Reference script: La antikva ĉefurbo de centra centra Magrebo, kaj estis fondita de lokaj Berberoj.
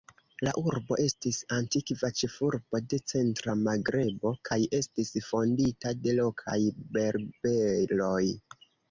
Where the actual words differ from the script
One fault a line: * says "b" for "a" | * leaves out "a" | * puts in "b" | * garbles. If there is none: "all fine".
* puts in "urbo estis"
* leaves out "centra"